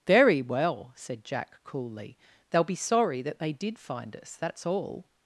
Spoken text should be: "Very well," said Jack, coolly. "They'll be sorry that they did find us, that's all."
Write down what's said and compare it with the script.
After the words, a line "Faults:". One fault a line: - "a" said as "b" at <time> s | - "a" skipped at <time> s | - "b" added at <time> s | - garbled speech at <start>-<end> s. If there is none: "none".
"Very well," said Jack, coolly. "They'll be sorry that they did find us, that's all."
Faults:
none